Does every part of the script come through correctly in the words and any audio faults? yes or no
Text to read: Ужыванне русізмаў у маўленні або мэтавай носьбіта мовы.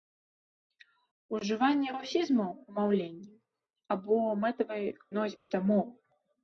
no